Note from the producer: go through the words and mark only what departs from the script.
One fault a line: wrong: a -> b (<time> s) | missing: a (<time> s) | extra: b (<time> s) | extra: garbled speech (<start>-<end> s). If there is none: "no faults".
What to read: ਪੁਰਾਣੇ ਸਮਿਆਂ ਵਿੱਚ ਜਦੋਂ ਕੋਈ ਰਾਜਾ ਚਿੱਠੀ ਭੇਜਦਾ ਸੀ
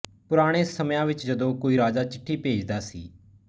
no faults